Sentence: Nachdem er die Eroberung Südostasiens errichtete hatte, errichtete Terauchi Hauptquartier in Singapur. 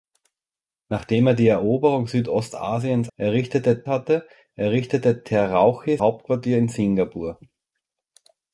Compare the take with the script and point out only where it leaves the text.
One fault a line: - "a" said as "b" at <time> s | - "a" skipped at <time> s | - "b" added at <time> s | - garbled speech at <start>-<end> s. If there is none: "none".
none